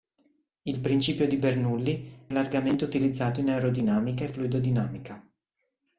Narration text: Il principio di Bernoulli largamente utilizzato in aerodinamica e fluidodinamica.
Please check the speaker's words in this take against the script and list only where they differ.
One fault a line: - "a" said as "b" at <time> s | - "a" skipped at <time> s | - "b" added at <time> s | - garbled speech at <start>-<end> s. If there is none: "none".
none